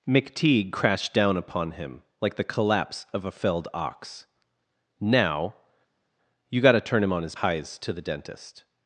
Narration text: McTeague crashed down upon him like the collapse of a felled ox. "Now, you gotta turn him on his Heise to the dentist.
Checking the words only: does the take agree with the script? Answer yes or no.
yes